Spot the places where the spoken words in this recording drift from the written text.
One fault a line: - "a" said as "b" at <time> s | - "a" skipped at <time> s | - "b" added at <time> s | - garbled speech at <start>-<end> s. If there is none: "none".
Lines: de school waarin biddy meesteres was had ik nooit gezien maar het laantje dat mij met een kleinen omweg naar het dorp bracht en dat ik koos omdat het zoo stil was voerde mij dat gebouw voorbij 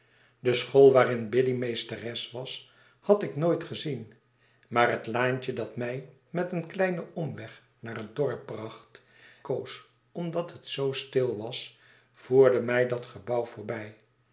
- "en dat ik" skipped at 9.0 s